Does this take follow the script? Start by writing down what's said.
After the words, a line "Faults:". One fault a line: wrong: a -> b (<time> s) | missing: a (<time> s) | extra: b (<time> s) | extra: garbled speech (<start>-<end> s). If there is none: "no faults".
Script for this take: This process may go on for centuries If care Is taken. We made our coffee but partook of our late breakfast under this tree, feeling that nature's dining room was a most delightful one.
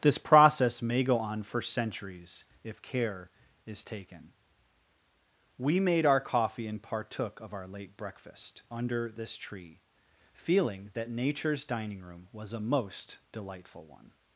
This process may go on for centuries If care Is taken. We made our coffee and partook of our late breakfast under this tree, feeling that nature's dining room was a most delightful one.
Faults:
wrong: but -> and (6.7 s)